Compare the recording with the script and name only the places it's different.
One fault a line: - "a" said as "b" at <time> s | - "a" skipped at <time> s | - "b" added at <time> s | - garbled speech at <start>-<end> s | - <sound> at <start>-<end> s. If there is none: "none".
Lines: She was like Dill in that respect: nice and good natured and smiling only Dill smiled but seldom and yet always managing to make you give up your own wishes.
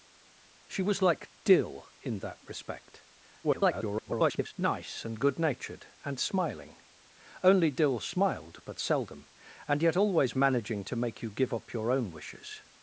- garbled speech at 3.4-4.5 s